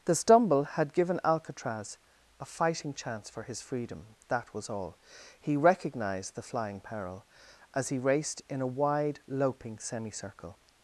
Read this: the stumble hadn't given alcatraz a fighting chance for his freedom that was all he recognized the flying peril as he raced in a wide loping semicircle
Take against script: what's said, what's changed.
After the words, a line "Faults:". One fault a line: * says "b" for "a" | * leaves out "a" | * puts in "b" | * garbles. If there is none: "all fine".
the stumble had given alcatraz a fighting chance for his freedom that was all he recognized the flying peril as he raced in a wide loping semicircle
Faults:
* says "had" for "hadn't"